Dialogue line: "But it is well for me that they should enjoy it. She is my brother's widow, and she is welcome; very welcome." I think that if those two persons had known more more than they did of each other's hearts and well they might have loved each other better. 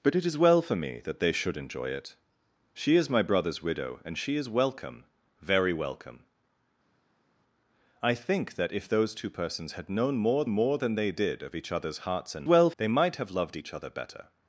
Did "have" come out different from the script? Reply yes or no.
no